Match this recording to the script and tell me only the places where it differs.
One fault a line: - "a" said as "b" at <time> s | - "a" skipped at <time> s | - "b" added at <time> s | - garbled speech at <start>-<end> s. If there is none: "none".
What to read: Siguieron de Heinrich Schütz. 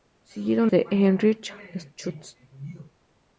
none